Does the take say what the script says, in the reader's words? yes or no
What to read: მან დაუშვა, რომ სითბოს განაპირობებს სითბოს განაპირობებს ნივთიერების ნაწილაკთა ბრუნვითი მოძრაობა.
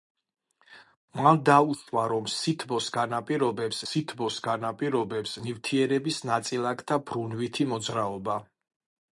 yes